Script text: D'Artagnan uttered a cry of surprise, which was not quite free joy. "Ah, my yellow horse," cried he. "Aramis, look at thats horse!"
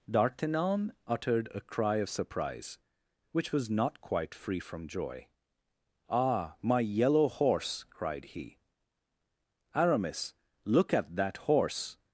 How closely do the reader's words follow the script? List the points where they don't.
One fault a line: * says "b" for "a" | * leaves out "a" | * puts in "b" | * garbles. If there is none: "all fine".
* puts in "from"
* says "that" for "thats"